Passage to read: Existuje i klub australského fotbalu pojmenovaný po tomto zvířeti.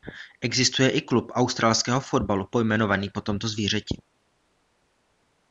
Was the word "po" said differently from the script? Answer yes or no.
no